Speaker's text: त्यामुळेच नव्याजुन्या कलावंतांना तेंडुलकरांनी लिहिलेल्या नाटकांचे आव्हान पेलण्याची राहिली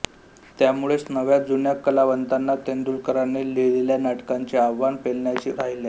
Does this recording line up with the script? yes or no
yes